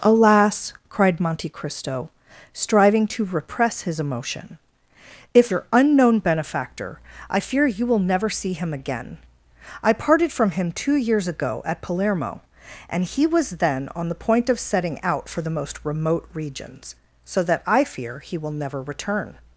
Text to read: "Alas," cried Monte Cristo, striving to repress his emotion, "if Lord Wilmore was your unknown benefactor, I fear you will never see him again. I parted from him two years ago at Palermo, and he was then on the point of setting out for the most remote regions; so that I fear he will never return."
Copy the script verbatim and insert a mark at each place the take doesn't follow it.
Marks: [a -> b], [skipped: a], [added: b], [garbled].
"Alas," cried Monte Cristo, striving to repress his emotion, "if [skipped: Lord Wilmore was] your unknown benefactor, I fear you will never see him again. I parted from him two years ago at Palermo, and he was then on the point of setting out for the most remote regions; so that I fear he will never return."